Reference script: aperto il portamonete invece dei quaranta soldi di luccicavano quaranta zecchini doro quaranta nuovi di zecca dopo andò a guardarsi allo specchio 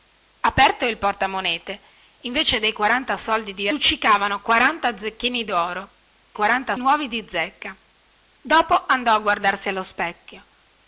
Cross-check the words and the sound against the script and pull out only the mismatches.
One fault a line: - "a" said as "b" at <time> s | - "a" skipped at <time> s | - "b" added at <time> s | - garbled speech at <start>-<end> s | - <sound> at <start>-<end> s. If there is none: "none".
none